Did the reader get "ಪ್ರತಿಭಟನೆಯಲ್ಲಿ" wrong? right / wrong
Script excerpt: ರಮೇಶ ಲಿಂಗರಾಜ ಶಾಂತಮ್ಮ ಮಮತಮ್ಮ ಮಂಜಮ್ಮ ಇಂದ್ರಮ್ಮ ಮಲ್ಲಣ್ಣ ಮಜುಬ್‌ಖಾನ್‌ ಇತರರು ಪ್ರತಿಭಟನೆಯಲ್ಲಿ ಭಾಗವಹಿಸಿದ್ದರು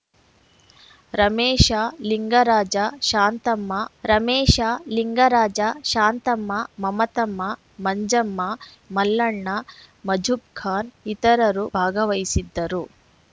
wrong